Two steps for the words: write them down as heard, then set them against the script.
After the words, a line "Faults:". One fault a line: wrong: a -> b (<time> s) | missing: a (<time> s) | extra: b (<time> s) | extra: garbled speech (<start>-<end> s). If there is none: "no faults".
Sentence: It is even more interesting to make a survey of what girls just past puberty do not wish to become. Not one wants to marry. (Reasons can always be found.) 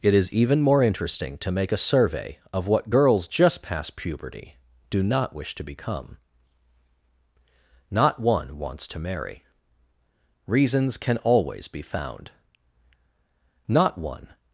It is even more interesting to make a survey of what girls just past puberty do not wish to become. Not one wants to marry. (Reasons can always be found.) Not one
Faults:
extra: Not one (13.7 s)